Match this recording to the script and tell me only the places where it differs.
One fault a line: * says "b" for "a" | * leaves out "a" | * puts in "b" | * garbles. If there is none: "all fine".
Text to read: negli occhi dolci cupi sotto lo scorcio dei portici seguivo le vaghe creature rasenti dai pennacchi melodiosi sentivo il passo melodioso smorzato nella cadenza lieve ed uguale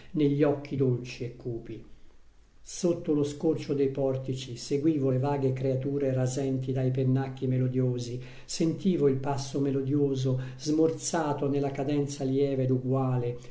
* puts in "e"